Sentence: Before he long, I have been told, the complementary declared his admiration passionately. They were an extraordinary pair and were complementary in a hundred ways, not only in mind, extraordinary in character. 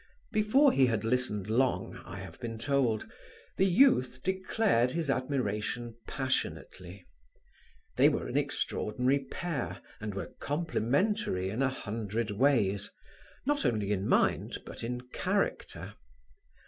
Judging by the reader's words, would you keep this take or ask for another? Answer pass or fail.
fail